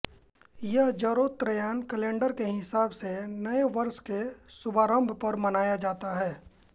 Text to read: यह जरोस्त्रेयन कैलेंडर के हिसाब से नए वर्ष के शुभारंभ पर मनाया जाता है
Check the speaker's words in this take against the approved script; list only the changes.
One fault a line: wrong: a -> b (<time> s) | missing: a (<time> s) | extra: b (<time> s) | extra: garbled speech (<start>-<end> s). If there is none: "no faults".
no faults